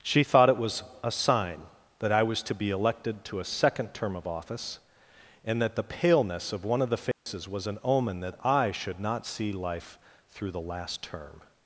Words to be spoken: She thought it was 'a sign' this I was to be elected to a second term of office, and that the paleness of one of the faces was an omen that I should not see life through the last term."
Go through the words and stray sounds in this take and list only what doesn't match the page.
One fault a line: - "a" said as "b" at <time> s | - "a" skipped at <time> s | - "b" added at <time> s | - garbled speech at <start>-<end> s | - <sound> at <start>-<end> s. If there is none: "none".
- "this" said as "that" at 2.0 s
- dropout at 7.1-7.3 s